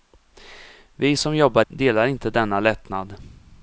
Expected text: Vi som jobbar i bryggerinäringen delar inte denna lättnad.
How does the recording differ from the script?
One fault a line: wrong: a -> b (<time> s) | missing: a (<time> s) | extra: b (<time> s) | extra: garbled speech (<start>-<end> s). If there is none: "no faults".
missing: i bryggerinäringen (1.7 s)